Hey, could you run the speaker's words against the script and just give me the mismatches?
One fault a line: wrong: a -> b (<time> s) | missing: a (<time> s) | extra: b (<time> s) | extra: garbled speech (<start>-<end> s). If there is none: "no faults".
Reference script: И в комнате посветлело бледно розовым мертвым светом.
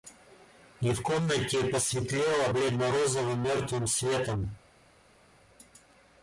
no faults